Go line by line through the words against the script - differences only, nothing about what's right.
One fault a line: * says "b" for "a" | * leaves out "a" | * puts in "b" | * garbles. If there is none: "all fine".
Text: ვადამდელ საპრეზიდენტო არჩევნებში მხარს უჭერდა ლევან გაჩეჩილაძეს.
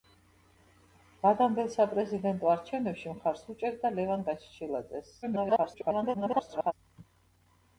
* garbles